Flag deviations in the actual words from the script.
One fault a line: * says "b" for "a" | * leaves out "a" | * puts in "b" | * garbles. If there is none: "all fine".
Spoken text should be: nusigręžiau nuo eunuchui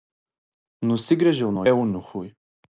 all fine